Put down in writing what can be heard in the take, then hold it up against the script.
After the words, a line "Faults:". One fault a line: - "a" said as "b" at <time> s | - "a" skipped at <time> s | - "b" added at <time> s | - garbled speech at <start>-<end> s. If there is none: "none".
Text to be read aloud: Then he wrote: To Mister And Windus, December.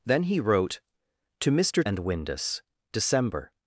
Then he wrote: To Mister And Windus, December.
Faults:
none